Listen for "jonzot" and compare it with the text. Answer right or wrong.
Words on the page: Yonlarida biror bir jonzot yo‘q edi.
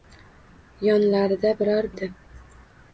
wrong